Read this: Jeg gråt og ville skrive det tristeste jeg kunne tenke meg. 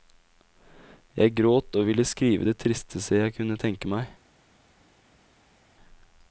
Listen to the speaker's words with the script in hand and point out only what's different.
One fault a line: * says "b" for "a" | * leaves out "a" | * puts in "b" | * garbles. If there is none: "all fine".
all fine